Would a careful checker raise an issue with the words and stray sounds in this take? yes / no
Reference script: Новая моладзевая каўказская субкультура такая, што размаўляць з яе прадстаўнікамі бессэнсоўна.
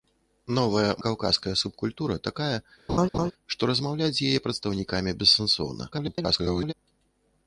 yes